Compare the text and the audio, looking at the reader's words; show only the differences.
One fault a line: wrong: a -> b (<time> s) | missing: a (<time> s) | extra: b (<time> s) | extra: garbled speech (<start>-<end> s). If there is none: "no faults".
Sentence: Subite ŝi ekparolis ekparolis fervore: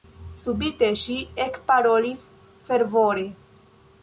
missing: ekparolis (2.2 s)